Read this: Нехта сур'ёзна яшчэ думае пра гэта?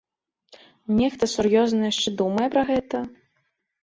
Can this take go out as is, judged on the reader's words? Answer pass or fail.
pass